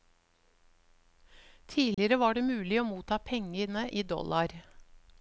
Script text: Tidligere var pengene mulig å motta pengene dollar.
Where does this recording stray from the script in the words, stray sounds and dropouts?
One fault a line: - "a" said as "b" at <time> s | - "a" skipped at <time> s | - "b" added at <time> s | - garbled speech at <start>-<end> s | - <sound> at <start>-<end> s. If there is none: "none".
- dropout at 1.9-2.0 s
- "pengene" said as "det" at 2.3 s
- "i" added at 3.9 s